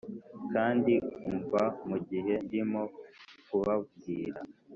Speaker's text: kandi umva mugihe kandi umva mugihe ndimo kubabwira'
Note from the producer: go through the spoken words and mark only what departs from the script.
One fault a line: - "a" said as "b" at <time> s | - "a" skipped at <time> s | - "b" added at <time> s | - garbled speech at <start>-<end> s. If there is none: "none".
- "kandi umva mugihe" skipped at 2.3 s